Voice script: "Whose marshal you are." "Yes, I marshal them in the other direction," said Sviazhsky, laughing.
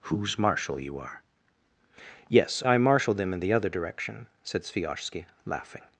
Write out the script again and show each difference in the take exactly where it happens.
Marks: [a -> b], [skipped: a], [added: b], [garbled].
"Whose marshal you are." "Yes, I marshal them in the other direction," said Sviazhsky, laughing.